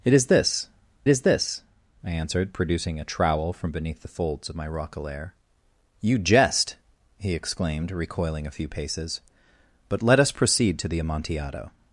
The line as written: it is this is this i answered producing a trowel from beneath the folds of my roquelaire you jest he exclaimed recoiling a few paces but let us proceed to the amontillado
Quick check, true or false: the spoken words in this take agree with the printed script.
true